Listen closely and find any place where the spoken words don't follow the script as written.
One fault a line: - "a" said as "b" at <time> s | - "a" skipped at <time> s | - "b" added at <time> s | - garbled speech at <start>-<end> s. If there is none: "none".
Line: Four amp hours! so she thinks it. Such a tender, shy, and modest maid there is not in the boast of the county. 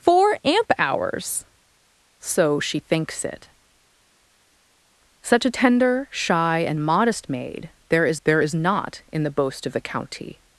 - "there is" added at 8.2 s